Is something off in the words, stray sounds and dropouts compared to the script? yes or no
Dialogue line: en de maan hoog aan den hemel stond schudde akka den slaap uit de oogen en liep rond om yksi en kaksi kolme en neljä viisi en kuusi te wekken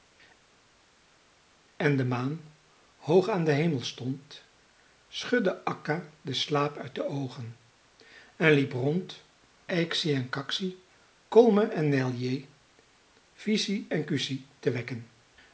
yes